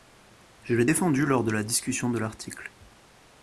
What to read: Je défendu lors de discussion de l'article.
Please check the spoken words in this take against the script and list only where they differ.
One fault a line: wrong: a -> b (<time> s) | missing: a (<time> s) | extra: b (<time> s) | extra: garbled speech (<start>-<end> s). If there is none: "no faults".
extra: l'ai (0.7 s)
extra: la (1.5 s)